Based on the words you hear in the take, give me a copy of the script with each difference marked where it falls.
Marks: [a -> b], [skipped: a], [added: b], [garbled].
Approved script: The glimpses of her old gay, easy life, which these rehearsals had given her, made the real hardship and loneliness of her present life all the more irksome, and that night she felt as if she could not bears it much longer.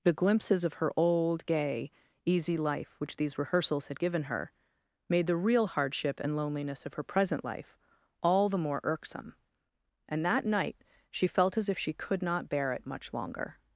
The glimpses of her old gay, easy life, which these rehearsals had given her, made the real hardship and loneliness of her present life all the more irksome, and that night she felt as if she could not [bears -> bear] it much longer.